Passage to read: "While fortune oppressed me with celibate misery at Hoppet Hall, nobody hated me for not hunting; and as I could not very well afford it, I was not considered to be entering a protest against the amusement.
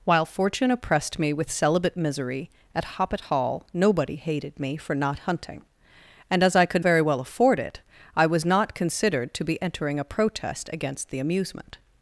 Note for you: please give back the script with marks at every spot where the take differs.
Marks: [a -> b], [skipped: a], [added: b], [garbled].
"While fortune oppressed me with celibate misery at Hoppet Hall, nobody hated me for not hunting; and as I could [skipped: not] very well afford it, I was not considered to be entering a protest against the amusement.